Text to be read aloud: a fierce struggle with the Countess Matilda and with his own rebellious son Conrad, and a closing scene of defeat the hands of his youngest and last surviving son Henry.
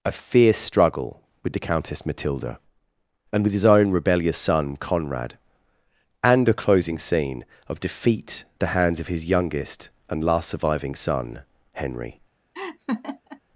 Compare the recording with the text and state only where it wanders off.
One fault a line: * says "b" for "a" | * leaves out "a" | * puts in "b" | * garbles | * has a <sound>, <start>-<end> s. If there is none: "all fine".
* has a laugh, 12.5-13.4 s